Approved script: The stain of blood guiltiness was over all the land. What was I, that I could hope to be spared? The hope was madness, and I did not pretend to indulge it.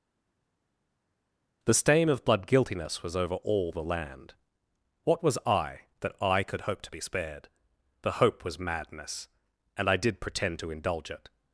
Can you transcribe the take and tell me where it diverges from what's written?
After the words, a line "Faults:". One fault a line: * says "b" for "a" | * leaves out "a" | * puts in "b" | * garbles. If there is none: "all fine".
The stain of blood guiltiness was over all the land. What was I, that I could hope to be spared? The hope was madness, and I did pretend to indulge it.
Faults:
* leaves out "not"